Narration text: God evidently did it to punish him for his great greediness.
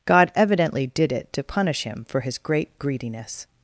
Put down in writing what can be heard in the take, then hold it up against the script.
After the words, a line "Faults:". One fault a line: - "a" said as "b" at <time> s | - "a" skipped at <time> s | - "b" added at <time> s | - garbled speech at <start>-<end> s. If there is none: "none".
God evidently did it to punish him for his great greediness.
Faults:
none